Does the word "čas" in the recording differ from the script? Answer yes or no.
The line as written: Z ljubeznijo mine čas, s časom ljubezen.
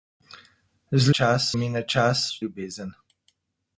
no